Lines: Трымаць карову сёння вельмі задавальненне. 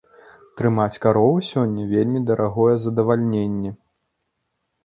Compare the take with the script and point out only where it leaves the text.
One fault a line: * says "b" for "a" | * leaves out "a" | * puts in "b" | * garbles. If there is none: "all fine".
* puts in "дарагое"